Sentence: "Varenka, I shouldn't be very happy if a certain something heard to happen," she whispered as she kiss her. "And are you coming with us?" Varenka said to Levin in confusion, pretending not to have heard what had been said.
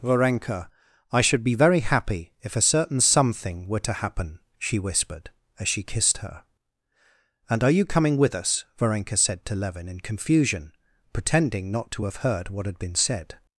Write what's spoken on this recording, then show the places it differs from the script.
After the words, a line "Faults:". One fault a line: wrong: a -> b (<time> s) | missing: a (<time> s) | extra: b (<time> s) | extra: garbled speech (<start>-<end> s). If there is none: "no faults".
"Varenka, I should be very happy if a certain something were to happen," she whispered as she kissed her. "And are you coming with us?" Varenka said to Levin in confusion, pretending not to have heard what had been said.
Faults:
wrong: shouldn't -> should (1.2 s)
wrong: heard -> were (3.7 s)
wrong: kiss -> kissed (5.8 s)